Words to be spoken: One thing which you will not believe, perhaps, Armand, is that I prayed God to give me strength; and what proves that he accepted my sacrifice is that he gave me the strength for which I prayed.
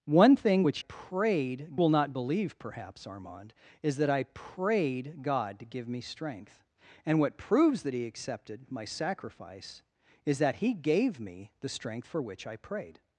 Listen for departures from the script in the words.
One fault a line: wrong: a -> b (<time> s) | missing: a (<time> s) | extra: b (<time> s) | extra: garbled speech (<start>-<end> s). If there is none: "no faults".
wrong: you -> prayed (0.8 s)